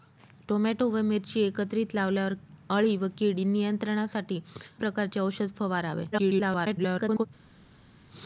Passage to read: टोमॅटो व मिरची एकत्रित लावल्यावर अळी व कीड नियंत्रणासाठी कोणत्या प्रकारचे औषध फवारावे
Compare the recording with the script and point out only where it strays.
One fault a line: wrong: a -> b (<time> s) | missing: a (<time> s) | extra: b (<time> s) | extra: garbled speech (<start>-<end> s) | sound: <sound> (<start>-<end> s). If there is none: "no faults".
missing: कोणत्या (4.4 s)
extra: garbled speech (6.1-7.3 s)